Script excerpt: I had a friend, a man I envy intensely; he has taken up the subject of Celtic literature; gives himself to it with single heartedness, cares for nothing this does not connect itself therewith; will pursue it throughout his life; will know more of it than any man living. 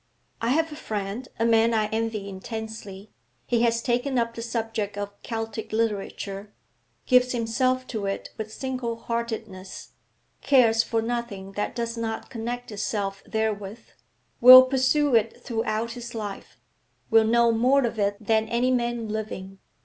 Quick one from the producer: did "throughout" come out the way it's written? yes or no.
yes